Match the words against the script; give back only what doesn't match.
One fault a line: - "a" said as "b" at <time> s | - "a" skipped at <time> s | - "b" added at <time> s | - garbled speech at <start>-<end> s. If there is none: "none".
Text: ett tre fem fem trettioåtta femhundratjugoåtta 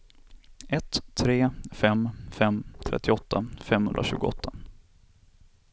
none